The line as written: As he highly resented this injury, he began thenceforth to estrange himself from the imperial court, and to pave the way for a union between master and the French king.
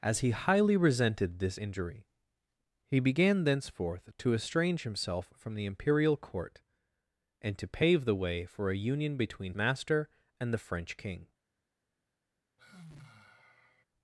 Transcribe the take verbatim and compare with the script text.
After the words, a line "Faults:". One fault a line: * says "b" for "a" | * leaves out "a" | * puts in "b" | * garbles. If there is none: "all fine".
As he highly resented this injury, he began thenceforth to estrange himself from the imperial court, and to pave the way for a union between master and the French king.
Faults:
all fine